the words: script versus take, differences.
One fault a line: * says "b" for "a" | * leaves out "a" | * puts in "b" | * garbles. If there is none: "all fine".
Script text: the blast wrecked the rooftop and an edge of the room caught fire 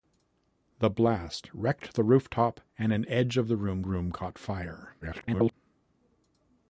* puts in "room"
* garbles